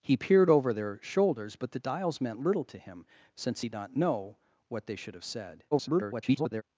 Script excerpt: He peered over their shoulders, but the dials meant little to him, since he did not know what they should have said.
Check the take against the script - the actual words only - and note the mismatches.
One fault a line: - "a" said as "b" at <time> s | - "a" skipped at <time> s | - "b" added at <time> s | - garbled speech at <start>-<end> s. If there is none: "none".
- "did" skipped at 3.7 s
- garbled speech at 5.7-6.6 s